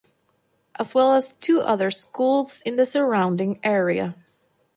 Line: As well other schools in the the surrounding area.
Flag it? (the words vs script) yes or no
yes